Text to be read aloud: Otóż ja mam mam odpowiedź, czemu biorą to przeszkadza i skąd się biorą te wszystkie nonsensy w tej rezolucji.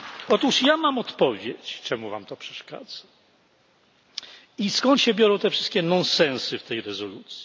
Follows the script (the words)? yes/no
no